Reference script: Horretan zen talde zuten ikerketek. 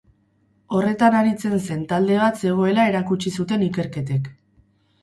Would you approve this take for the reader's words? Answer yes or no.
no